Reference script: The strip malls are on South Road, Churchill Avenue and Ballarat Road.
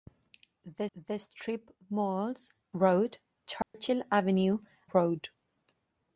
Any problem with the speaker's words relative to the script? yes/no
yes